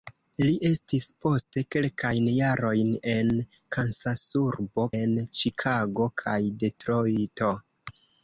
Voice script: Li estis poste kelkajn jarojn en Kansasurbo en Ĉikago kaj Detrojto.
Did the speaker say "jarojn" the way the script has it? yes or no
yes